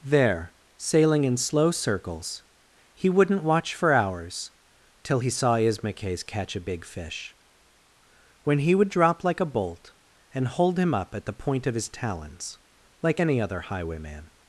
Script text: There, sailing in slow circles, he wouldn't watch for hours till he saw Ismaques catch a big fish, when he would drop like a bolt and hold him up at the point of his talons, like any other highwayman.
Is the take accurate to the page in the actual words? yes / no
yes